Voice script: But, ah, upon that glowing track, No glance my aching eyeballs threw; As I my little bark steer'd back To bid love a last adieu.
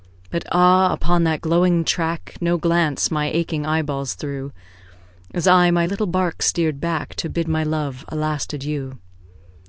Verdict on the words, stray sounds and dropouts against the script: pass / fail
fail